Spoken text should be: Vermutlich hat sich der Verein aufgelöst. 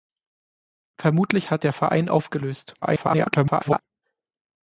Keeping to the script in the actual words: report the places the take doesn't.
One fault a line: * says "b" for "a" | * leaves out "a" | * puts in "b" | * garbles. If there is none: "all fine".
* leaves out "sich"
* garbles